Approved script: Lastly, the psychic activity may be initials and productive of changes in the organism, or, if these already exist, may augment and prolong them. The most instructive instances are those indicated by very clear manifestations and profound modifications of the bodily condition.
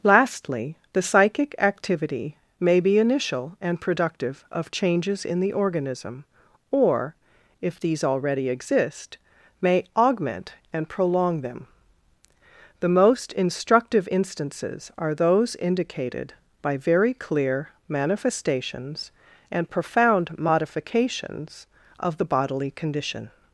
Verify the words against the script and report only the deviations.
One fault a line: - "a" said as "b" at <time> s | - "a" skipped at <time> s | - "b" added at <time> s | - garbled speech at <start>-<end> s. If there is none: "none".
- "initials" said as "initial" at 3.0 s